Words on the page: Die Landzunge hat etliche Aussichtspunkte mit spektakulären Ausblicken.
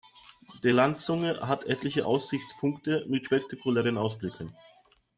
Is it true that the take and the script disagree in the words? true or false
false